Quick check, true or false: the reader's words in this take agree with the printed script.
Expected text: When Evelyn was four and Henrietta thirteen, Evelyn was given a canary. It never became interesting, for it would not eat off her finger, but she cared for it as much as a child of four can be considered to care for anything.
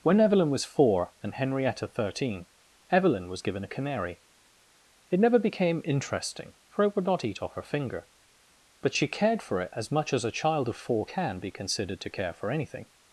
true